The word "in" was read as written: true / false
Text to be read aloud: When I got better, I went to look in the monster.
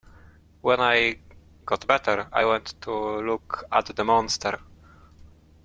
false